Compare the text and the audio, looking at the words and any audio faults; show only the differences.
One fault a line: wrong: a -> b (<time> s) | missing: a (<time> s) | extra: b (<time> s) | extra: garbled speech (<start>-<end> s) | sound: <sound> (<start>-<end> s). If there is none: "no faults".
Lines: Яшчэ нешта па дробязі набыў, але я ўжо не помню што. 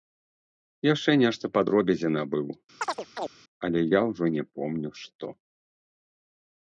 sound: chirp (2.8-3.3 s)